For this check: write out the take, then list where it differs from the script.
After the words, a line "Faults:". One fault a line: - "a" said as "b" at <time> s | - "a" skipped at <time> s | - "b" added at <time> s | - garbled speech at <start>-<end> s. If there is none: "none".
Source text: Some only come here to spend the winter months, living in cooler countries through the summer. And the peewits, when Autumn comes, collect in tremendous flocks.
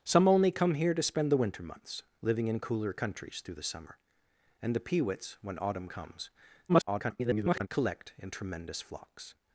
Some only come here to spend the winter months, living in cooler countries through the summer. And the peewits, when Autumn comes, [garbled] collect in tremendous flocks.
Faults:
- garbled speech at 6.7-7.7 s